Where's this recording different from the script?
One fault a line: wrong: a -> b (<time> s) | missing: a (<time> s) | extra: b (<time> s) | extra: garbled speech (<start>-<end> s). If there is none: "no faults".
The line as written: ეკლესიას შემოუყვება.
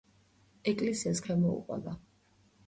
no faults